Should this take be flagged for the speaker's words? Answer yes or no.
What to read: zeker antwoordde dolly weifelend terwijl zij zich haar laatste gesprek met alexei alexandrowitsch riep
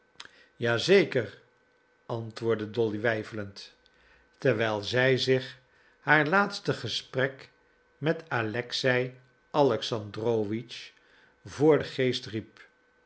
yes